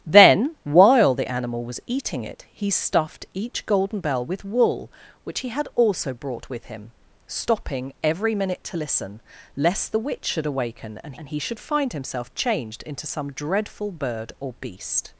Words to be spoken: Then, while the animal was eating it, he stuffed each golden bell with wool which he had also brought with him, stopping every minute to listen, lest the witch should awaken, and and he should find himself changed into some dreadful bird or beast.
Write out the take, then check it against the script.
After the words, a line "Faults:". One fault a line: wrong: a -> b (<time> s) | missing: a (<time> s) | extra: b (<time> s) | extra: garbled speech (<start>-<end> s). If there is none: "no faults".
Then, while the animal was eating it, he stuffed each golden bell with wool which he had also brought with him, stopping every minute to listen, lest the witch should awaken, and and he should find himself changed into some dreadful bird or beast.
Faults:
no faults